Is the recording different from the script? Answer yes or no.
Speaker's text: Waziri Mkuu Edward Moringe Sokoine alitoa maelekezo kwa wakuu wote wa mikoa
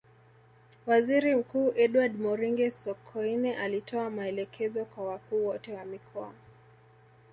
no